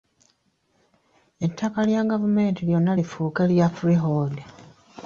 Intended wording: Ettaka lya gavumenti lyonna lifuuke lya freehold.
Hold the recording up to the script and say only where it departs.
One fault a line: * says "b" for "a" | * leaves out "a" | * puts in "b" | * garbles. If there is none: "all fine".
all fine